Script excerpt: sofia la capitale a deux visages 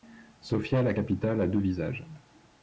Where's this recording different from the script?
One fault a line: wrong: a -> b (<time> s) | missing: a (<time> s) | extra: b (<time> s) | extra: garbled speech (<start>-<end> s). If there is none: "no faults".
no faults